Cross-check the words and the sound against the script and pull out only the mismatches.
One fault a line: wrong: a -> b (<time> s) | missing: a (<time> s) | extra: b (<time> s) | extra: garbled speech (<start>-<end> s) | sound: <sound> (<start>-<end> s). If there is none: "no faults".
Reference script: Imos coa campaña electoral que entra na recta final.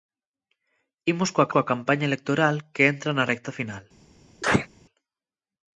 extra: coa (1.5 s)
sound: sneeze (4.4-4.7 s)